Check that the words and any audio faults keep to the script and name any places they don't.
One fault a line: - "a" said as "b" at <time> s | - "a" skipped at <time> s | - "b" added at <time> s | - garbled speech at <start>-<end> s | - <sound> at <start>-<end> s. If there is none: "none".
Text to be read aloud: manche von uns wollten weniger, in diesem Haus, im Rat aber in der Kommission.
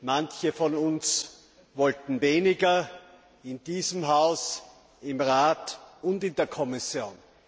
- "aber" said as "und" at 6.0 s